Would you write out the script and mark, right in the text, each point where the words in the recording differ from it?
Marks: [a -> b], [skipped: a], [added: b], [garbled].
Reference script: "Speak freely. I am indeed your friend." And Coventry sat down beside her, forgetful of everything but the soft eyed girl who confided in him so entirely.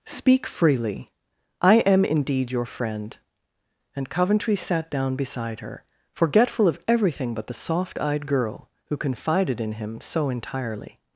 "Speak freely. I am indeed your friend." And Coventry sat down beside her, forgetful of everything but the soft eyed girl who confided in him so entirely.